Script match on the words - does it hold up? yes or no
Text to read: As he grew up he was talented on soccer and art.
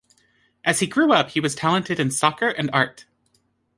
no